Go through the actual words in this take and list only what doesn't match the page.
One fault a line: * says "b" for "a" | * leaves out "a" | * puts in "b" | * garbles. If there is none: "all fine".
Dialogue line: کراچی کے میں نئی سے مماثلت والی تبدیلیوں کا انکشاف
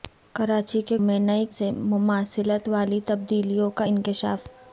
all fine